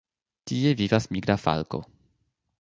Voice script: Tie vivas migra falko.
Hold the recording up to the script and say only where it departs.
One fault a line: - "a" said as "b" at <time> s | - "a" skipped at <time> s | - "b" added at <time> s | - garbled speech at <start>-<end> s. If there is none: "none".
none